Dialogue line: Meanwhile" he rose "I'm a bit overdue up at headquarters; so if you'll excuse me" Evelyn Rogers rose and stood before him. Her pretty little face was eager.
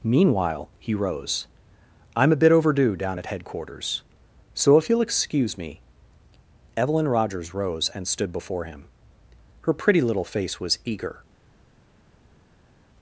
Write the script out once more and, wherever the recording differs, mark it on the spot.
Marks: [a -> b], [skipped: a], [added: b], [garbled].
Meanwhile" he rose "I'm a bit overdue [up -> down] at headquarters; so if you'll excuse me" Evelyn Rogers rose and stood before him. Her pretty little face was eager.